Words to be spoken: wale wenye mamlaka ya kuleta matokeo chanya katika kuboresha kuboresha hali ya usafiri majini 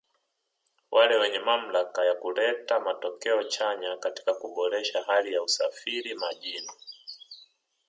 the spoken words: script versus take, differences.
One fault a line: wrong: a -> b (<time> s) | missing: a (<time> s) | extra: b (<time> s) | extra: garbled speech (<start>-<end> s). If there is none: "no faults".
missing: kuboresha (5.0 s)